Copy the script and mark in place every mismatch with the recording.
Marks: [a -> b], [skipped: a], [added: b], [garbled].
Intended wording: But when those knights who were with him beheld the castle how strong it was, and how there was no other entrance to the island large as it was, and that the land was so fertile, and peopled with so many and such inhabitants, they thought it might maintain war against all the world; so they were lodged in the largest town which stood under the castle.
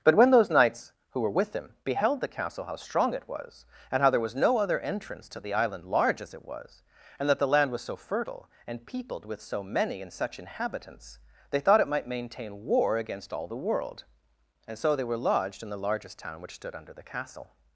But when those knights who were with him beheld the castle how strong it was, and how there was no other entrance to the island large as it was, and that the land was so fertile, and peopled with so many and such inhabitants, they thought it might maintain war against all the world; [added: and] so they were lodged in the largest town which stood under the castle.